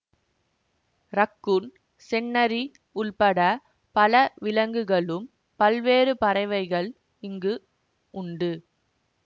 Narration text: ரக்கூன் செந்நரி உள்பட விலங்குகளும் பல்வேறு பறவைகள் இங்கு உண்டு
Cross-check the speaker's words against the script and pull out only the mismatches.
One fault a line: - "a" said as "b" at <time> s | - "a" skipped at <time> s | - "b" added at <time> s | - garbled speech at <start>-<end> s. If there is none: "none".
- "பல" added at 4.0 s